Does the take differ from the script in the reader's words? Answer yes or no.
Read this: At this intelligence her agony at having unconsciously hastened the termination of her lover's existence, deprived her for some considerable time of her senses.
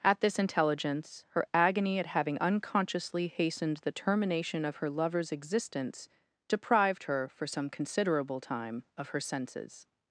no